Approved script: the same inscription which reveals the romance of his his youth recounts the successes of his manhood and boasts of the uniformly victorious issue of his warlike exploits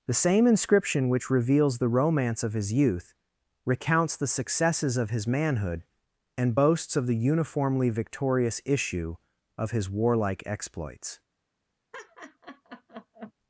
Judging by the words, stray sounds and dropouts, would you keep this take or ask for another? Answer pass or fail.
fail